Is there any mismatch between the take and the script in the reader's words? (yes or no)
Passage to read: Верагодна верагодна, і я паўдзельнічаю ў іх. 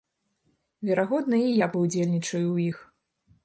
yes